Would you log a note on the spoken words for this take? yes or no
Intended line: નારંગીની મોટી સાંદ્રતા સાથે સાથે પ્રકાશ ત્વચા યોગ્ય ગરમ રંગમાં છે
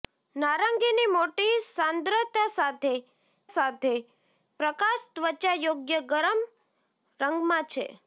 no